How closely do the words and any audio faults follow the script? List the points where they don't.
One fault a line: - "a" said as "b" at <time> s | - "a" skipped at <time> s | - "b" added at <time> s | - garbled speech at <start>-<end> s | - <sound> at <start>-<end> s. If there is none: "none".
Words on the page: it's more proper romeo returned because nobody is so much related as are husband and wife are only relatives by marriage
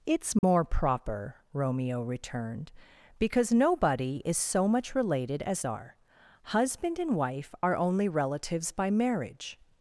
- dropout at 0.4-0.4 s